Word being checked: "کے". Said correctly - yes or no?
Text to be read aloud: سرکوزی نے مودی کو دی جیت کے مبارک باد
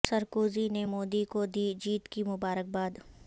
no